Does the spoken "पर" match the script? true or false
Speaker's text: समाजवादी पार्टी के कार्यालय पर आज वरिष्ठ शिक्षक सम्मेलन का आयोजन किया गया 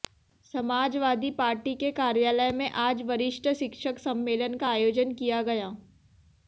false